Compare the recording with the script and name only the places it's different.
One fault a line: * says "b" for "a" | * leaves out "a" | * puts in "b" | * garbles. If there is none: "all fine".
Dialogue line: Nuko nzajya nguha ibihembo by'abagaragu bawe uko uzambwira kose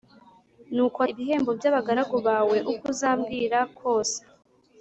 * leaves out "nzajya nguha"